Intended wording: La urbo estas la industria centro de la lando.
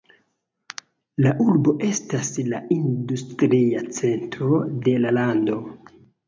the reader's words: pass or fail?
pass